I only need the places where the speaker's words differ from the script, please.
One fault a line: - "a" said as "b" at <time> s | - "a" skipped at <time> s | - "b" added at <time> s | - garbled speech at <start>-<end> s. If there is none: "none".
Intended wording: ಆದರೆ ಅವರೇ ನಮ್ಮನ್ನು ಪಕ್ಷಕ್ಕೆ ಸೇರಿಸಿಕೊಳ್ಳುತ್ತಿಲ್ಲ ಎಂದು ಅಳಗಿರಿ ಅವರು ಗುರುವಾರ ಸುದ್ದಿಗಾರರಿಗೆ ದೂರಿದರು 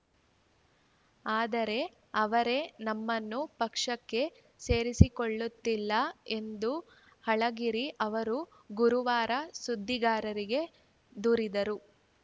none